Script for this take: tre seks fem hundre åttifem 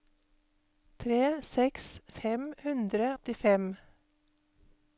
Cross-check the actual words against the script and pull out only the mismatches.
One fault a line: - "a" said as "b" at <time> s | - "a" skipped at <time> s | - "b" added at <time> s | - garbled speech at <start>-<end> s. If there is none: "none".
none